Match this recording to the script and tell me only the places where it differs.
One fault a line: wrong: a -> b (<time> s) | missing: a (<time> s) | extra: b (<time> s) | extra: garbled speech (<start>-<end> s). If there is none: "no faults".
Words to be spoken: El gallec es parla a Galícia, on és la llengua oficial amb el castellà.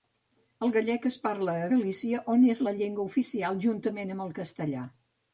extra: juntament (3.7 s)